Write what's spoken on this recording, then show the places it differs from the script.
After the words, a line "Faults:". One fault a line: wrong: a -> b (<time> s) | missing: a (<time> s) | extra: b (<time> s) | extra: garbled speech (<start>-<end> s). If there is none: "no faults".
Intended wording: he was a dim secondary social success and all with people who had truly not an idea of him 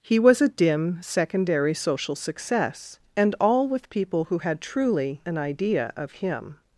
he was a dim secondary social success and all with people who had truly an idea of him
Faults:
missing: not (5.2 s)